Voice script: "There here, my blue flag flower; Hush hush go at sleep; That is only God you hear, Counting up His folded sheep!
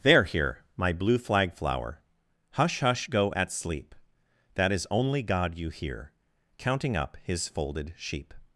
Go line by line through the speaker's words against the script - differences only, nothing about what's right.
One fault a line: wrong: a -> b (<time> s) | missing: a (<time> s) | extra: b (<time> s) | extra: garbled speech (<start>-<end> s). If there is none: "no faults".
no faults